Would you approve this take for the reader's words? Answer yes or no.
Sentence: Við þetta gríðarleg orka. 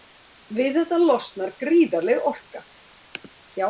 no